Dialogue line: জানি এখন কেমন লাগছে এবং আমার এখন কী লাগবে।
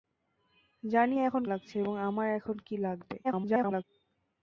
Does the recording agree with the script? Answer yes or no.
no